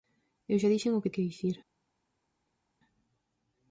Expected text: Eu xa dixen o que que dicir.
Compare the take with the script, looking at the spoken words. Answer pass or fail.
pass